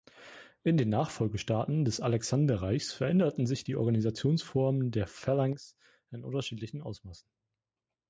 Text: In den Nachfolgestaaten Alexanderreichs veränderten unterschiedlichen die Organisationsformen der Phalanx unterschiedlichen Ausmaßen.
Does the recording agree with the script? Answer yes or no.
no